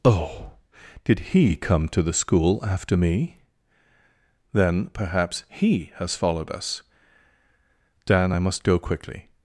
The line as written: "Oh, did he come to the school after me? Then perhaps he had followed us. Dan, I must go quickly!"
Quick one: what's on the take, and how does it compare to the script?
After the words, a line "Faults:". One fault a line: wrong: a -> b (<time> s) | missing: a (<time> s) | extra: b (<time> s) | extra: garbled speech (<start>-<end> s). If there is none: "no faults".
"Oh, did he come to the school after me? Then perhaps he has followed us. Dan, I must go quickly!"
Faults:
wrong: had -> has (5.9 s)